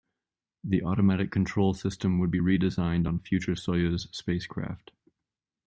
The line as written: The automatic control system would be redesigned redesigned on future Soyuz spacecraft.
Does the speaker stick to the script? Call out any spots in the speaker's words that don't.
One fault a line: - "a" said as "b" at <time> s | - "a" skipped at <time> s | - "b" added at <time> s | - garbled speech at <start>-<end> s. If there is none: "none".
- "redesigned" skipped at 3.1 s